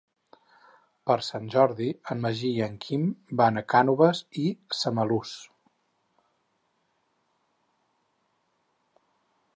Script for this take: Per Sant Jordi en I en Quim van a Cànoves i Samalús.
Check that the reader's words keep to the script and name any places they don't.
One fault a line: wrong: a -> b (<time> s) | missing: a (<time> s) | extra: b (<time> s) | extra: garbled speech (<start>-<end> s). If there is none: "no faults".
extra: Magí (2.3 s)